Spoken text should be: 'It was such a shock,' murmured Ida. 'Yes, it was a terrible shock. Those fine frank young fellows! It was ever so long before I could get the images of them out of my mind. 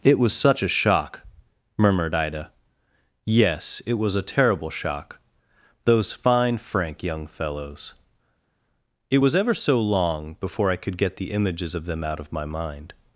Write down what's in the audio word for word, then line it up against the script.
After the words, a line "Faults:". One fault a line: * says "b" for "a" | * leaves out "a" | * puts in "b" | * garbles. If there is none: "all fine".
'It was such a shock,' murmured Ida. 'Yes, it was a terrible shock. Those fine frank young fellows! It was ever so long before I could get the images of them out of my mind.
Faults:
all fine